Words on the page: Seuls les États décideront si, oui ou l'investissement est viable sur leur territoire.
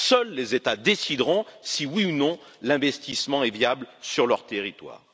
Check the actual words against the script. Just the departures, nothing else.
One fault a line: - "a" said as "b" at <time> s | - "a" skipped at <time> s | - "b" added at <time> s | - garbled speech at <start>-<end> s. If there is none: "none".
- "non" added at 2.1 s